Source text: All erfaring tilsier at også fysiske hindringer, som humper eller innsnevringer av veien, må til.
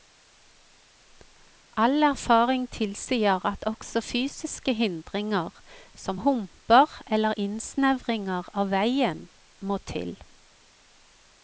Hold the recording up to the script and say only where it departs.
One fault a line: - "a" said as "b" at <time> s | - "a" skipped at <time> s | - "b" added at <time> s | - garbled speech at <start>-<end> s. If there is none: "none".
none